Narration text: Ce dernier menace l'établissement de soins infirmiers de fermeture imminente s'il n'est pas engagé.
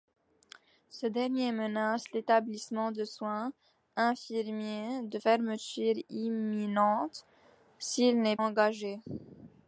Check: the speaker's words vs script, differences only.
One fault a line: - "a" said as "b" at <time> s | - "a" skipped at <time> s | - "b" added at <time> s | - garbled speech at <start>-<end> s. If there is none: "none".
- "pas" skipped at 8.4 s